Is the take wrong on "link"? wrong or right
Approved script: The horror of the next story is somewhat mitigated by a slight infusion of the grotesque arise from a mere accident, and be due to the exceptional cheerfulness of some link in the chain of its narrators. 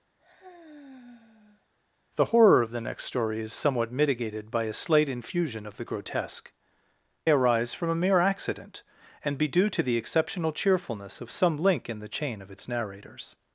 right